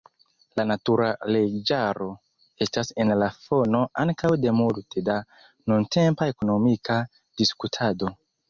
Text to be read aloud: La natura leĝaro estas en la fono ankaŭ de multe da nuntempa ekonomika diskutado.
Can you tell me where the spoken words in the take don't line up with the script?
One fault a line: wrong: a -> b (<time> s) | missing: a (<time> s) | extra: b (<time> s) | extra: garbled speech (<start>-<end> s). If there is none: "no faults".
no faults